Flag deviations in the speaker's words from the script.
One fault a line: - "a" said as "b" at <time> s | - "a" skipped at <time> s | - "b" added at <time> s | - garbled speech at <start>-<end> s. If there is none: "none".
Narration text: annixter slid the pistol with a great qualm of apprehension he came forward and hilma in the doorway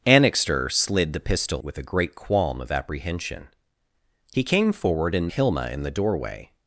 none